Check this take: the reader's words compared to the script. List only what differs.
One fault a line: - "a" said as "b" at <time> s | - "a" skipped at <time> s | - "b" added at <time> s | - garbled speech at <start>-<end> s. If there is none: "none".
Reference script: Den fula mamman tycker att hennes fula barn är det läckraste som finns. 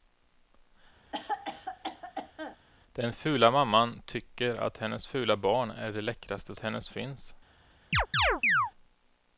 - "som" said as "hennes" at 6.6 s